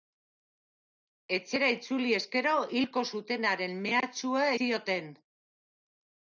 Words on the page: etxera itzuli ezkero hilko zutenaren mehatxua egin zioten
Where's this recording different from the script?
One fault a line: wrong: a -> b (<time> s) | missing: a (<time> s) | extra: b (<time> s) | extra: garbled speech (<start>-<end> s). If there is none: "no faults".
missing: egin (4.5 s)